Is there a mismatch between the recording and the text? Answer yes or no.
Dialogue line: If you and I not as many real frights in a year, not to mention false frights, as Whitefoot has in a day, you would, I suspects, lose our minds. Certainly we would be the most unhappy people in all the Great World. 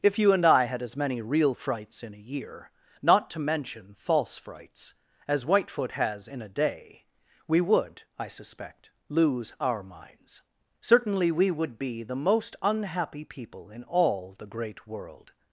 yes